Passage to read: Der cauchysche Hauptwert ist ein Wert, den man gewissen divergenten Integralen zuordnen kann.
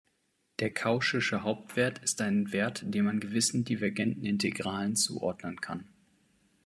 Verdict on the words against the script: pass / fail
pass